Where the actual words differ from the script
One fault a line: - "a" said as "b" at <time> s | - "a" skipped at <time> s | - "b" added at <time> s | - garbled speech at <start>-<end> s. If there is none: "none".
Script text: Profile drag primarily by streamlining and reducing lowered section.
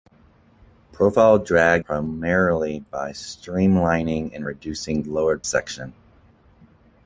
none